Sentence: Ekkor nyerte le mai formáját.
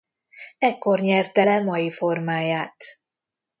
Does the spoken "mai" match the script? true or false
true